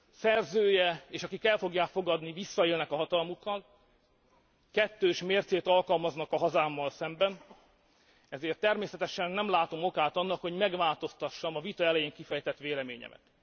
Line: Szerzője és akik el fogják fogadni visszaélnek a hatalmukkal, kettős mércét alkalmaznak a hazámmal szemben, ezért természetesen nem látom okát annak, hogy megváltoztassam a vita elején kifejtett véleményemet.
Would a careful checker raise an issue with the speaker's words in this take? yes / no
no